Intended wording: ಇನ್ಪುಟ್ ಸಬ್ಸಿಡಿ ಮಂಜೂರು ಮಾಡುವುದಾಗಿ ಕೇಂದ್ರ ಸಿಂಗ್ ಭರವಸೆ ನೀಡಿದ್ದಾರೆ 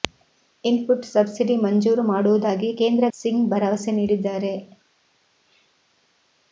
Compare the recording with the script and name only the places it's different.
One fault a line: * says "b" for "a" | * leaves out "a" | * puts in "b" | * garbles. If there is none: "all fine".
all fine